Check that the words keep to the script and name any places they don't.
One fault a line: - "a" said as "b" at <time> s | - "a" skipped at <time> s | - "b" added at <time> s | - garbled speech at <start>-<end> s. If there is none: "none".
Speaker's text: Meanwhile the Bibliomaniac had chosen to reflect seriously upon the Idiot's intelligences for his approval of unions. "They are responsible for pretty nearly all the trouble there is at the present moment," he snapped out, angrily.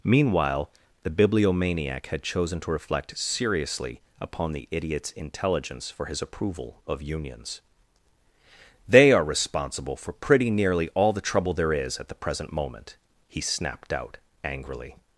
- "intelligences" said as "intelligence" at 5.1 s